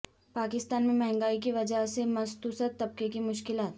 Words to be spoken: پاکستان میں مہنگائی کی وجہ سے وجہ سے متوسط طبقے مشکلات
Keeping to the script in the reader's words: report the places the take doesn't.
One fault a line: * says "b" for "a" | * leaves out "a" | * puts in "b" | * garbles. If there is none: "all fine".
* leaves out "وجہ سے"
* puts in "کی"